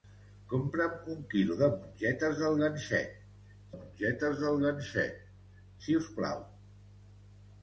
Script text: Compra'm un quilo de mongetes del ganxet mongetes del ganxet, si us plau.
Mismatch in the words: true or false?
false